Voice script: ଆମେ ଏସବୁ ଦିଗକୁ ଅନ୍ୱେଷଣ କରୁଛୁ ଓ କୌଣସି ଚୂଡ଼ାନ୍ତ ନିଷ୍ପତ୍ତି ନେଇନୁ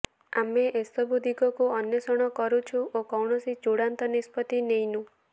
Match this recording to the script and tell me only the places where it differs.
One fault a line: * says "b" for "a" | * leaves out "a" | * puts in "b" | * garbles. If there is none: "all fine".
all fine